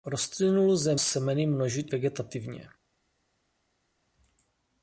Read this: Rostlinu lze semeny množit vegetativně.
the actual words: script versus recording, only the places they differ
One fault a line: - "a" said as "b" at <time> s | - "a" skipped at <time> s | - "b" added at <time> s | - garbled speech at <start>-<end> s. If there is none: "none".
none